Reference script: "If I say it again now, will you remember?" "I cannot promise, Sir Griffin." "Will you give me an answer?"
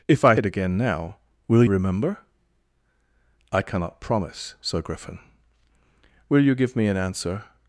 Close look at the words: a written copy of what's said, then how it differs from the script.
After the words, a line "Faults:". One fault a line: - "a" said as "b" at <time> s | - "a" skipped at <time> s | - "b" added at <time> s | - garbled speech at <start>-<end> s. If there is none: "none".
"If I it again now, will remember?" "I cannot promise, Sir Griffin." "Will you give me an answer?"
Faults:
- "say" skipped at 0.3 s
- "you" skipped at 1.6 s